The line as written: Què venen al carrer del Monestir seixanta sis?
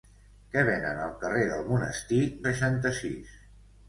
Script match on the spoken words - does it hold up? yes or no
yes